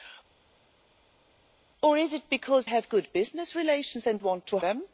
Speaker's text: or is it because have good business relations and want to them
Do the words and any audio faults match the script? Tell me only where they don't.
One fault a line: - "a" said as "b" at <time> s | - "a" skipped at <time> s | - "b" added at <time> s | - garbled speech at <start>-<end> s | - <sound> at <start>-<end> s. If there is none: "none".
none